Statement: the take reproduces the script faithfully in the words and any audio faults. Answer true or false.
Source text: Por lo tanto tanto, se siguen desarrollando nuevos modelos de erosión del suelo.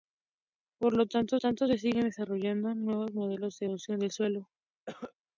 false